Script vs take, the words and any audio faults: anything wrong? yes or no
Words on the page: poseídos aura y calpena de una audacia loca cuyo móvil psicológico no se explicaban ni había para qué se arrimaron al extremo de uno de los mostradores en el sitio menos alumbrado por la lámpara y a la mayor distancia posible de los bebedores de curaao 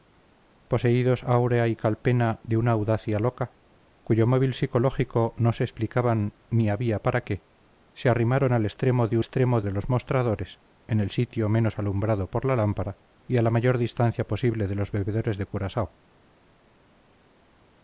yes